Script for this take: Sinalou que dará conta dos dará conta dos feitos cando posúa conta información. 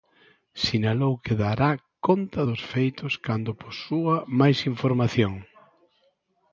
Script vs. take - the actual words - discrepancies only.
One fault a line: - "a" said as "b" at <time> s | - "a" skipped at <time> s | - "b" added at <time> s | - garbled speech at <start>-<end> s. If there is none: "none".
- "dará conta dos" skipped at 2.6 s
- "conta" said as "máis" at 4.4 s